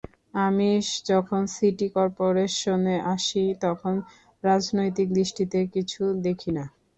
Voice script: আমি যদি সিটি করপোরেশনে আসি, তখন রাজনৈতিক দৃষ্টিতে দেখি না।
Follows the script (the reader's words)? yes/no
no